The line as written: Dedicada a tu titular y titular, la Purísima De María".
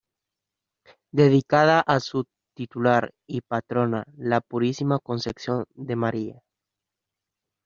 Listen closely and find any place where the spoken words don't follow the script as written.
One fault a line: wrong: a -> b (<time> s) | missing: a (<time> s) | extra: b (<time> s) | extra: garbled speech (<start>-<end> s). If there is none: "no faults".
wrong: tu -> su (2.0 s)
wrong: titular -> patrona (3.4 s)
extra: Concepción (5.0 s)